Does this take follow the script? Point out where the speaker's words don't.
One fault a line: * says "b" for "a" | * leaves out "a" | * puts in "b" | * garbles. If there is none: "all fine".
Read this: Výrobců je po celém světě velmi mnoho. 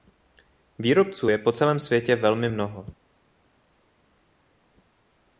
all fine